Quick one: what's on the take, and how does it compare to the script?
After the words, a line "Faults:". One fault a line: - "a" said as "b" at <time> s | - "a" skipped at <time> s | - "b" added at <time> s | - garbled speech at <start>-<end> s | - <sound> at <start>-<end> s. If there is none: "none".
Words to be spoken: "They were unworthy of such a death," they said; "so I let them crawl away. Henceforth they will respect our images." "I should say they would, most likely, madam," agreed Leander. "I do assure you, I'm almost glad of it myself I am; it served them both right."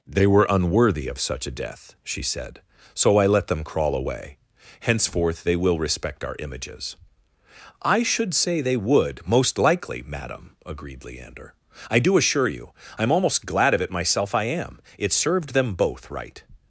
"They were unworthy of such a death," she said; "so I let them crawl away. Henceforth they will respect our images." "I should say they would, most likely, madam," agreed Leander. "I do assure you, I'm almost glad of it myself I am; it served them both right."
Faults:
- "they" said as "she" at 2.0 s